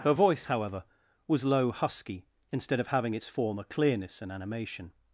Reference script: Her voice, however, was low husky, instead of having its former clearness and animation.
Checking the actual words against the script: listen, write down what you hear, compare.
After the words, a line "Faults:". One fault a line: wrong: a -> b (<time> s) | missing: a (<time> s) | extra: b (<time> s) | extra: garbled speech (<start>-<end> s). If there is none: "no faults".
Her voice, however, was low husky, instead of having its former clearness and animation.
Faults:
no faults